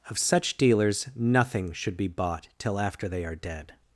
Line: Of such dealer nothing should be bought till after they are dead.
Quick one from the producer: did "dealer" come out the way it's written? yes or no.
no